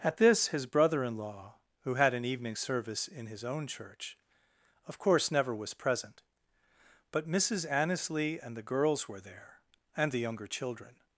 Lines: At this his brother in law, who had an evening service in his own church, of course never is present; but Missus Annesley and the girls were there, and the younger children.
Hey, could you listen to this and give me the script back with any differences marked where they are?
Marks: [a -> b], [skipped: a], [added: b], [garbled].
At this his brother in law, who had an evening service in his own church, of course never [is -> was] present; but Missus Annesley and the girls were there, and the younger children.